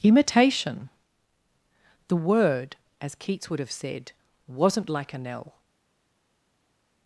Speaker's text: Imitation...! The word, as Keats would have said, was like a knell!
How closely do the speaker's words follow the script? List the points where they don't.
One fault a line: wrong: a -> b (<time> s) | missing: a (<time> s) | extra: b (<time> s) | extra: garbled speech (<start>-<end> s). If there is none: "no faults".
wrong: was -> wasn't (4.5 s)